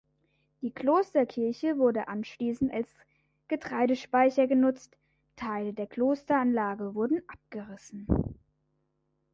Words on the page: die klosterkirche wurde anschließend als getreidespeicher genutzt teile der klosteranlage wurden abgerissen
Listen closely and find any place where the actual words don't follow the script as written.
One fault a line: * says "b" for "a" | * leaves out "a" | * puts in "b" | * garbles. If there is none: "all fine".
all fine